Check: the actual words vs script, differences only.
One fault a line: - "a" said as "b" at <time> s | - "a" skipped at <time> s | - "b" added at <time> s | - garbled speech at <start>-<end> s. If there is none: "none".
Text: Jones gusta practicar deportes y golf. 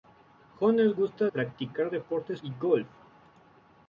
none